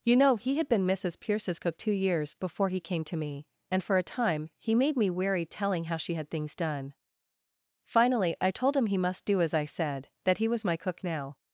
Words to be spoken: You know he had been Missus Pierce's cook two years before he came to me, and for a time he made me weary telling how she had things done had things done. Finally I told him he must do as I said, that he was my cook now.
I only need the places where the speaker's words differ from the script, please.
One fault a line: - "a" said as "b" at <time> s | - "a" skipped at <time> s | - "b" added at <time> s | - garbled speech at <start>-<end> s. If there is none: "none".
- "had things done" skipped at 6.9 s